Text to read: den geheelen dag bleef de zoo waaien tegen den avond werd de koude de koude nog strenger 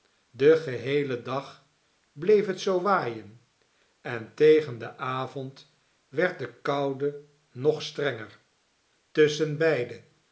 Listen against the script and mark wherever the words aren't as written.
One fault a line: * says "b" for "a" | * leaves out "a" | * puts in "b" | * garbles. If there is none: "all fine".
* says "het" for "de"
* puts in "en"
* leaves out "de koude"